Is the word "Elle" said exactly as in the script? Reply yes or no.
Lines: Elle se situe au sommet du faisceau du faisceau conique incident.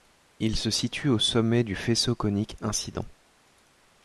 no